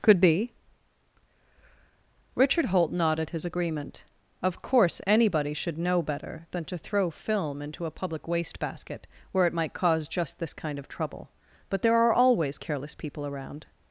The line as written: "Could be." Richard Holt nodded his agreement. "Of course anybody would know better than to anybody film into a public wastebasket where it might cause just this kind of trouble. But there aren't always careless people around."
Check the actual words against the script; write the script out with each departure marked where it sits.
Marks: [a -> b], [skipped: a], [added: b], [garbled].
"Could be." Richard Holt nodded his agreement. "Of course anybody [would -> should] know better than to [anybody -> throw] film into a public wastebasket where it might cause just this kind of trouble. But there [aren't -> are] always careless people around."